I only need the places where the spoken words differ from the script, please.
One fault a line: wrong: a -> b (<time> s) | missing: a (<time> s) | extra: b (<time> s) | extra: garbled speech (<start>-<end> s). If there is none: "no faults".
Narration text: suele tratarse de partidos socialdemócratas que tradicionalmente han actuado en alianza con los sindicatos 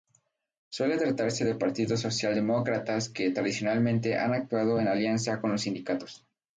no faults